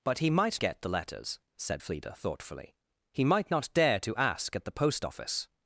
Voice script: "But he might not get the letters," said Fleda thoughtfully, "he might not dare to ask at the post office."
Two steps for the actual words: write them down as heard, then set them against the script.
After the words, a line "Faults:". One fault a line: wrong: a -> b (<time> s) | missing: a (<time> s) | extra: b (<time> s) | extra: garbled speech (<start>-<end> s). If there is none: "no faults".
"But he might get the letters," said Fleda thoughtfully, "he might not dare to ask at the post office."
Faults:
missing: not (0.6 s)